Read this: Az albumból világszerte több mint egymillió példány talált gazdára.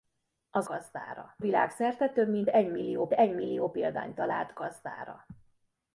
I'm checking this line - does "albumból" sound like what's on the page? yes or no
no